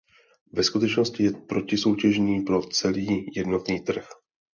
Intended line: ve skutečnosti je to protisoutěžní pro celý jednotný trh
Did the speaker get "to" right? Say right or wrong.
wrong